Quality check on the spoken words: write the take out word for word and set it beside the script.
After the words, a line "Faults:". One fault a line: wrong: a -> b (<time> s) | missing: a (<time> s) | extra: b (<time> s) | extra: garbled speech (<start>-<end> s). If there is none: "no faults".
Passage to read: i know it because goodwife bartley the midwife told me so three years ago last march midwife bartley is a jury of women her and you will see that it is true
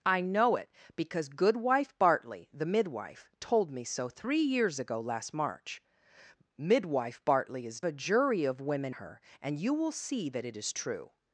i know it because goodwife bartley the midwife told me so three years ago last march midwife bartley is a jury of women her and you will see that it is true
Faults:
no faults